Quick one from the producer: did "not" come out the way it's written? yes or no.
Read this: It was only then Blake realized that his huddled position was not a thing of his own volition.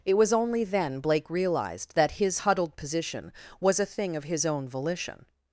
no